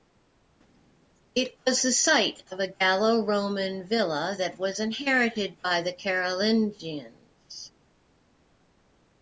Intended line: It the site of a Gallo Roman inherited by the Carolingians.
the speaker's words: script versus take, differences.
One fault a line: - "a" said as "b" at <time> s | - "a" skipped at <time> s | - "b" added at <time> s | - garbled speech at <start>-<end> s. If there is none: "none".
- "was" added at 1.7 s
- "villa that was" added at 3.8 s